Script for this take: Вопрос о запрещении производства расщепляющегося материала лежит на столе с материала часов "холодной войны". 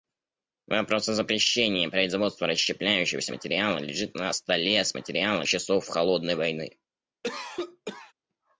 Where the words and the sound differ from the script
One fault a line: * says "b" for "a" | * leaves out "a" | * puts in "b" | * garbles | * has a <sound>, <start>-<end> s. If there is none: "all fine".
* has a cough, 7.2-8.1 s